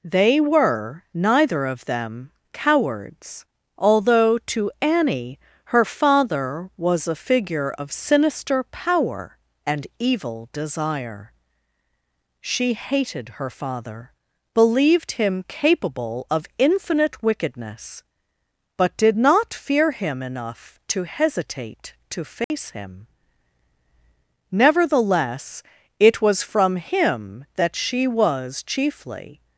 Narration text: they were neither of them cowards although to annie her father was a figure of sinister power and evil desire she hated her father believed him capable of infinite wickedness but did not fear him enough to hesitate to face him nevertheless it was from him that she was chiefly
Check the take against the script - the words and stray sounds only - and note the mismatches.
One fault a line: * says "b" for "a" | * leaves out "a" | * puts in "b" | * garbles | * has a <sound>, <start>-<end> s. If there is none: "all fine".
* has a dropout, 22.4-22.5 s